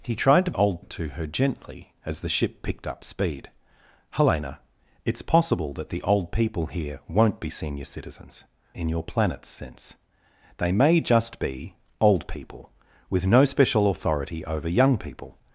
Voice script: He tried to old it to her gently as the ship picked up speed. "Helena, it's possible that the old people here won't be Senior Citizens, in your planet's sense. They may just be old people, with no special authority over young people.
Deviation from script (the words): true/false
false